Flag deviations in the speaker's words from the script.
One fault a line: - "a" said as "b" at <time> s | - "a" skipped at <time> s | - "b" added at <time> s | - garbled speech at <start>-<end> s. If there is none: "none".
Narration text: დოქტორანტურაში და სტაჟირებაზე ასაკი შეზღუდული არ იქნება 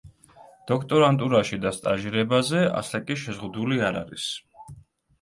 - "იქნება" said as "არის" at 4.0 s